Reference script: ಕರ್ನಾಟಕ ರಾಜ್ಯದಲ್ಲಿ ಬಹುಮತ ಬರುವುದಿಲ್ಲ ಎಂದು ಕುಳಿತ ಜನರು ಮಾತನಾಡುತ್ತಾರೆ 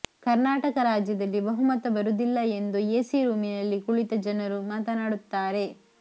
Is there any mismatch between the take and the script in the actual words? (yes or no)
yes